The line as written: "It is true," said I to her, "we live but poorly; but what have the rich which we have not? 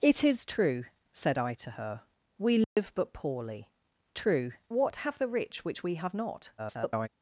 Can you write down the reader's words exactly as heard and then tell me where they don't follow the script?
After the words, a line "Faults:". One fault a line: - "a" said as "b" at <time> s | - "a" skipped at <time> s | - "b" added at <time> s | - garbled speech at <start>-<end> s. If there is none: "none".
"It is true," said I to her, "we live but poorly; true what have the rich which we have not? [garbled]
Faults:
- "but" said as "true" at 4.1 s
- garbled speech at 6.6-7.1 s